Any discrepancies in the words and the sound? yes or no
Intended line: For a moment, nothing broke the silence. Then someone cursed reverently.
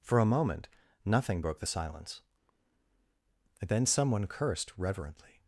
no